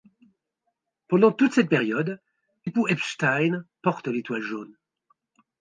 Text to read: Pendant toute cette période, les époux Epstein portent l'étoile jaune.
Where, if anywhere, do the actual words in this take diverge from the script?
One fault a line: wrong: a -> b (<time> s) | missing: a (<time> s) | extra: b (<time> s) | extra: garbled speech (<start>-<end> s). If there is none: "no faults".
missing: les (2.2 s)